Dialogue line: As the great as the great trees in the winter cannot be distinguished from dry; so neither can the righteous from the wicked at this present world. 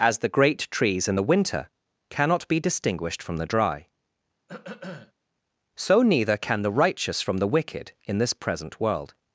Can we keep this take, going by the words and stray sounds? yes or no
no